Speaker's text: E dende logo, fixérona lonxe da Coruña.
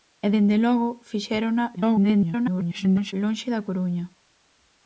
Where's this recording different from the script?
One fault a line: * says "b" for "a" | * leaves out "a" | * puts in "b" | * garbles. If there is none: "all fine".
* garbles